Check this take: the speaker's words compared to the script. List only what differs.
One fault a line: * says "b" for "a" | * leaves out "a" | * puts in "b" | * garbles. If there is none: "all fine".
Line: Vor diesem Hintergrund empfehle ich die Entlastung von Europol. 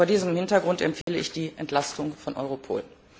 all fine